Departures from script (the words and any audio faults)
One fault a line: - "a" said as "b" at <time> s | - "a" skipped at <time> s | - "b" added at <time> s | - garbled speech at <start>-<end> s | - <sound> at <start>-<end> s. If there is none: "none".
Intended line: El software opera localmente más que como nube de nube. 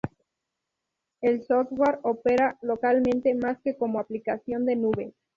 - "nube" said as "aplicación" at 4.0 s